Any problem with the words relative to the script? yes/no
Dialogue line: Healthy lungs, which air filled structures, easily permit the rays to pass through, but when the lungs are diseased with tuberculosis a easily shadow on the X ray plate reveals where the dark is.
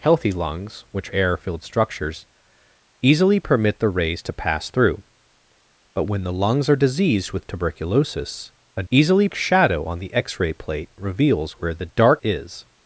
no